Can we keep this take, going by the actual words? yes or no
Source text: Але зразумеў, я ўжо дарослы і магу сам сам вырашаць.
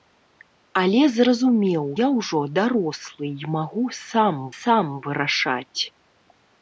yes